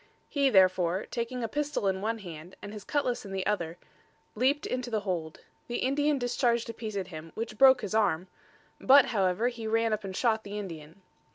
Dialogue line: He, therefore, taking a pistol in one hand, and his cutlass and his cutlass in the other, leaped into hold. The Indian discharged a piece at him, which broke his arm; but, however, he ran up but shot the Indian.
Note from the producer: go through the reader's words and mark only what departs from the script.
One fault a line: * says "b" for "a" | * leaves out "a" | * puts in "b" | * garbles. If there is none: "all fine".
* leaves out "and his cutlass"
* puts in "the"
* says "and" for "but"